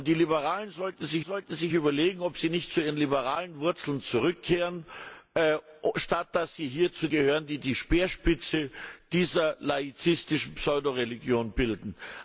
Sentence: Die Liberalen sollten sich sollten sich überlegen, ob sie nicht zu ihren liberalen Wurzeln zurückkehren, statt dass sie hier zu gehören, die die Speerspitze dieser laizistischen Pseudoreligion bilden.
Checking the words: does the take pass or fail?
pass